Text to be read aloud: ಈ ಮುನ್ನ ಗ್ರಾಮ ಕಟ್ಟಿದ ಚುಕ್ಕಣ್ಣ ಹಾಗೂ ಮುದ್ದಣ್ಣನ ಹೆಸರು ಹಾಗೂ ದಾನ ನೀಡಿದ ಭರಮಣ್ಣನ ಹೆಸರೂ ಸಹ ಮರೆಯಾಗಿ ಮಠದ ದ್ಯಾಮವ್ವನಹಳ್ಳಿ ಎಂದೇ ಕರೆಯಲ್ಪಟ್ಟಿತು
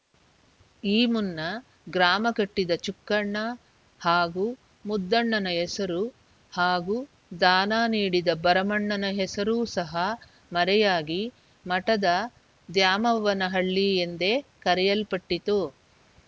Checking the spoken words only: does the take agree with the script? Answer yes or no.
yes